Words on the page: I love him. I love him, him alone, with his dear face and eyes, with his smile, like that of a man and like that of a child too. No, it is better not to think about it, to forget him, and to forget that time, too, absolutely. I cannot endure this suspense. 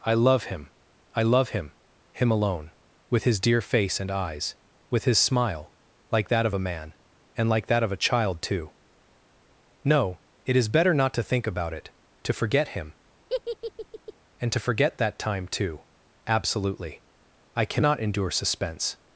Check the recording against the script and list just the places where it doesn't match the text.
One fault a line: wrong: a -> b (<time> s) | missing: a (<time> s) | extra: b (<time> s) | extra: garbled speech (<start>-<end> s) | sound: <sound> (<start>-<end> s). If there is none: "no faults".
sound: laugh (13.3-14.1 s)
missing: this (18.3 s)